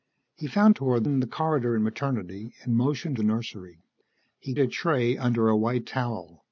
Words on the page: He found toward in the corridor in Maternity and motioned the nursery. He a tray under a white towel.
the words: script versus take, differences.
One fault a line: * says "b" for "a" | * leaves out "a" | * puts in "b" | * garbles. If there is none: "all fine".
all fine